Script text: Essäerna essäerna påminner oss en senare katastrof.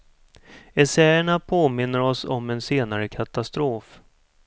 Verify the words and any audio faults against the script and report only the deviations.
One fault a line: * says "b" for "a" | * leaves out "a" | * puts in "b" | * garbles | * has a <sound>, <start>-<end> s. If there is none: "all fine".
* leaves out "essäerna"
* puts in "om"